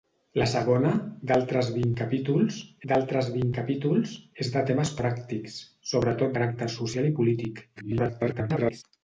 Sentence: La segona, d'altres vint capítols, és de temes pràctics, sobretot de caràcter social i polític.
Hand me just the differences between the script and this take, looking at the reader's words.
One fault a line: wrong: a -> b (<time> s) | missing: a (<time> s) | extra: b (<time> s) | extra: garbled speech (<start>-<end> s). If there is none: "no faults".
extra: d'altres vint capítols (2.9 s)
missing: de (6.4 s)
extra: garbled speech (7.8-8.8 s)